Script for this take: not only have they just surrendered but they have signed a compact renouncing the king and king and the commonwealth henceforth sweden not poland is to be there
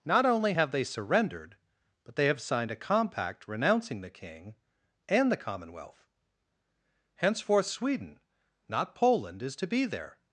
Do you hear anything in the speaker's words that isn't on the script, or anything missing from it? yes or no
yes